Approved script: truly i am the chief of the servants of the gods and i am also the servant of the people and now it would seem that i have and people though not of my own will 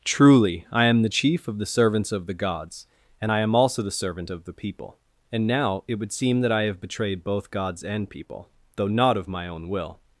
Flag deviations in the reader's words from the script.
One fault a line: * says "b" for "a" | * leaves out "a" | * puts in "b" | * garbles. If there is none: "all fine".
* puts in "betrayed both gods"